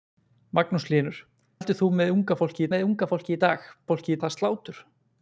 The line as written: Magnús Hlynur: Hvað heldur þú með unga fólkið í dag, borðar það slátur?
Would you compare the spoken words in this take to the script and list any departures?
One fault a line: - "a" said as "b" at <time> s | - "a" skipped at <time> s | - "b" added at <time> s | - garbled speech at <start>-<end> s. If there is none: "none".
- "Hvað" skipped at 1.2 s
- "með unga fólkið" added at 2.7 s
- "borðar" said as "fólkið" at 3.9 s